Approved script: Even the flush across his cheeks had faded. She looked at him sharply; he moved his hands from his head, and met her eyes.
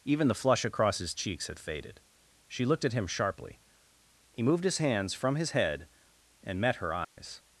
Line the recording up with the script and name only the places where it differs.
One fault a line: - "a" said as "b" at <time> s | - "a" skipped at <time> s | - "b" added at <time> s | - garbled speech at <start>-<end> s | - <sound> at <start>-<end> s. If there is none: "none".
- dropout at 7.0-7.2 s